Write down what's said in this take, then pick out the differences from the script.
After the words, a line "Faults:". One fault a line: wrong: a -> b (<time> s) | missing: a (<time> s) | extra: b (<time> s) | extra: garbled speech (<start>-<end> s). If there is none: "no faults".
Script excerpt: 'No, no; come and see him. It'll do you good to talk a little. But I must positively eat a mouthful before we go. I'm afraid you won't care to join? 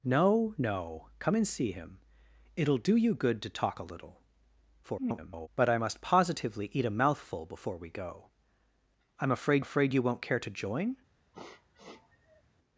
'No, no; come and see him. It'll do you good to talk a little. [garbled] But I must positively eat a mouthful before we go. I'm afraid afraid you won't care to join?
Faults:
extra: garbled speech (4.8-5.5 s)
extra: afraid (9.6 s)